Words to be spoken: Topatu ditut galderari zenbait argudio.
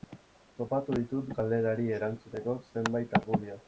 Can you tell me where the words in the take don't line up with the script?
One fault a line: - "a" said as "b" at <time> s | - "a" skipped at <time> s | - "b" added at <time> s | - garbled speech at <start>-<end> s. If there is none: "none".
- "erantzuteko" added at 2.0 s